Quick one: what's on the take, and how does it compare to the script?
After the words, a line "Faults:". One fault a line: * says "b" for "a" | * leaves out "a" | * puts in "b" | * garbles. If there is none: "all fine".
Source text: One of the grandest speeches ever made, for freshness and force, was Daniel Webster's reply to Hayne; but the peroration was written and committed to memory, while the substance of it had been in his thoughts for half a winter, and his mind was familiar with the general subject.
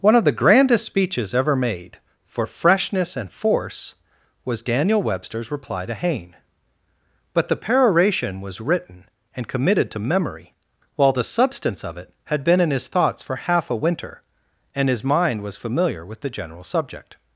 One of the grandest speeches ever made, for freshness and force, was Daniel Webster's reply to Hayne; but the peroration was written and committed to memory, while the substance of it had been in his thoughts for half a winter, and his mind was familiar with the general subject.
Faults:
all fine